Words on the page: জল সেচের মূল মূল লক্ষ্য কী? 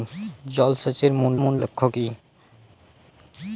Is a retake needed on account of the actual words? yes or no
no